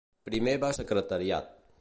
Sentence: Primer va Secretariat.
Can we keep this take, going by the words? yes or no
yes